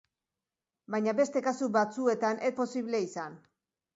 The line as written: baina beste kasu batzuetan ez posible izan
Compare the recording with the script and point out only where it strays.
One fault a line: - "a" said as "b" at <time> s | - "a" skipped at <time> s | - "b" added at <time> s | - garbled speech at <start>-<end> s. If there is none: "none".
none